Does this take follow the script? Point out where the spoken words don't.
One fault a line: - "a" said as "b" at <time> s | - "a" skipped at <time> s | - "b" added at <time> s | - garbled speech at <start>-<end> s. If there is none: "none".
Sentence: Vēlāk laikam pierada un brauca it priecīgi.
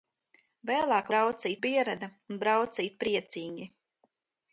- "laikam" said as "brauca" at 1.1 s